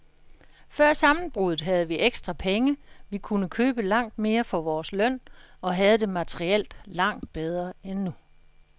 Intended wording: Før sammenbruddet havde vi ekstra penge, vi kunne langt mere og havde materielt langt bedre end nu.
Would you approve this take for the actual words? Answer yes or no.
no